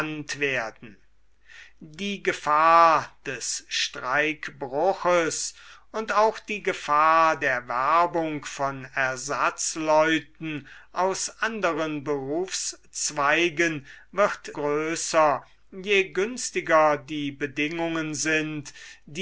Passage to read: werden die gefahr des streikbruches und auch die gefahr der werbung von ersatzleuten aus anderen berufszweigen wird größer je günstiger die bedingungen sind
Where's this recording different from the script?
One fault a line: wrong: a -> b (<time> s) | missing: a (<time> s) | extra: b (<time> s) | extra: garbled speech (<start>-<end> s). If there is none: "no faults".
no faults